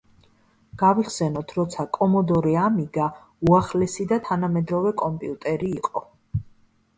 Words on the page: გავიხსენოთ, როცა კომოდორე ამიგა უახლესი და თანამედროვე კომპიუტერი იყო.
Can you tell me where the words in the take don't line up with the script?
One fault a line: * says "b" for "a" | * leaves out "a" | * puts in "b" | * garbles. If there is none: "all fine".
all fine